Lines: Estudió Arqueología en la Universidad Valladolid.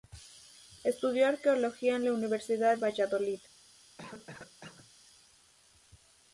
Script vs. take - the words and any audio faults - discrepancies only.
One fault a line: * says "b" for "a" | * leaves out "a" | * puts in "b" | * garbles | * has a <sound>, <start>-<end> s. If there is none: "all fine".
* has a cough, 4.0-4.9 s